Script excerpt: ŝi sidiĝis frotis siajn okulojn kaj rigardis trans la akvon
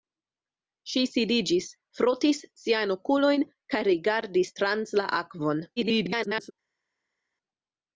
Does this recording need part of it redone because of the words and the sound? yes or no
yes